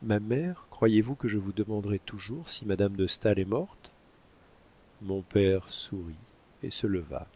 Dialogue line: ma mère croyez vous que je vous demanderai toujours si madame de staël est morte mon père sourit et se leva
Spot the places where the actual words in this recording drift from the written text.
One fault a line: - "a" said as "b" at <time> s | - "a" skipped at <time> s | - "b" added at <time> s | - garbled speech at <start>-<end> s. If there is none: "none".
none